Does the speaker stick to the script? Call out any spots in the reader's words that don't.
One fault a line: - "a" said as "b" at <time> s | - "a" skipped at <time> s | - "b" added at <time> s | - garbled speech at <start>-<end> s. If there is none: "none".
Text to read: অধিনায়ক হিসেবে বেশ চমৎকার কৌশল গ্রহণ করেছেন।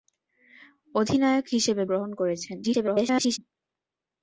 - "বেশ চমৎকার কৌশল" skipped at 1.8 s
- garbled speech at 2.6-3.4 s